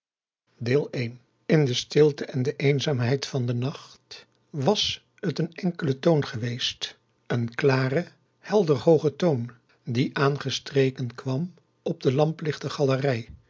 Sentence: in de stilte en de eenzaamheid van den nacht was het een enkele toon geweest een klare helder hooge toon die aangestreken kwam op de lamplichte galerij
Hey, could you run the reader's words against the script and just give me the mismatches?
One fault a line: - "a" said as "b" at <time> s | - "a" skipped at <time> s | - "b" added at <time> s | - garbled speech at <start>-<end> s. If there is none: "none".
none